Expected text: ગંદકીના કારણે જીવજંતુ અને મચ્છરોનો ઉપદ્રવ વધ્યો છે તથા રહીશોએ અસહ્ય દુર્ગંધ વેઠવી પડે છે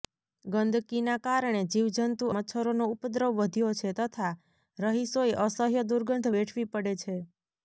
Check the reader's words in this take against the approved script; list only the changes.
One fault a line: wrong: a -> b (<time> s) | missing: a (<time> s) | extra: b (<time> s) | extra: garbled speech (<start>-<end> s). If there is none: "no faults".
missing: અને (2.3 s)